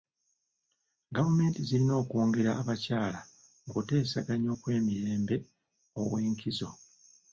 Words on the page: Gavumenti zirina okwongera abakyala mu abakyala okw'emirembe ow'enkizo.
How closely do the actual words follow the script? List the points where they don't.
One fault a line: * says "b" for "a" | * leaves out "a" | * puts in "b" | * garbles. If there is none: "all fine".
* says "kuteesaganya" for "abakyala"